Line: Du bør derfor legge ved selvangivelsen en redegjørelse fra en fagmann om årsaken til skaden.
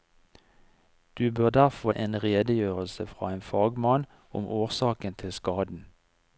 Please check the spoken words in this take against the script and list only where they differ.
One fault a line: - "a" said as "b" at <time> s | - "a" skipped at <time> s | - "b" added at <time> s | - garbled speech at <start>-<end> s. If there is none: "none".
- "legge ved selvangivelsen" skipped at 1.9 s